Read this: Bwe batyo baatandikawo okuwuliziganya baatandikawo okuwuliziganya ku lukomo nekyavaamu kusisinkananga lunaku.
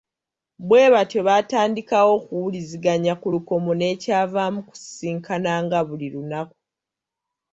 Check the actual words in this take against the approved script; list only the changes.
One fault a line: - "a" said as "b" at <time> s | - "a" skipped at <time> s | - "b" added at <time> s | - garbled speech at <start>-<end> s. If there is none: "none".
- "baatandikawo okuwuliziganya" skipped at 3.1 s
- "buli" added at 5.9 s